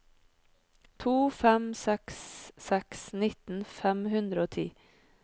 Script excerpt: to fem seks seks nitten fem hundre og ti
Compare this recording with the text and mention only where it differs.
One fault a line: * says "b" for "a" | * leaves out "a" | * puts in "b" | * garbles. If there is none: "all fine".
all fine